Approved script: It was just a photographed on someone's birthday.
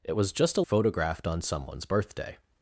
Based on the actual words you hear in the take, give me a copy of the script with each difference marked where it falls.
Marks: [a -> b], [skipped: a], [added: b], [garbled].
It was just a photographed on someone's birthday.